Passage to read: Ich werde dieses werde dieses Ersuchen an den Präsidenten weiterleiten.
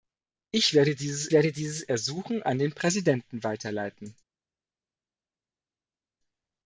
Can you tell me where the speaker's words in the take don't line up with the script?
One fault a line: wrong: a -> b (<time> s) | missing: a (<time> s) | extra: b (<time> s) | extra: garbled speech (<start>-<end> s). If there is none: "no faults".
no faults